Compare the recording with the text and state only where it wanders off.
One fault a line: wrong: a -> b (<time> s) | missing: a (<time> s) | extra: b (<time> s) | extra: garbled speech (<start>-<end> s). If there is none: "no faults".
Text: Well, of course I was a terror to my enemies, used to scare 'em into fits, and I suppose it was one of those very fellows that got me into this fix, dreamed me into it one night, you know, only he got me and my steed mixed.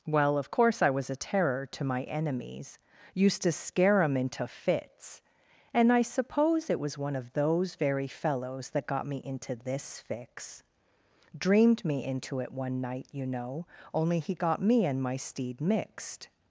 no faults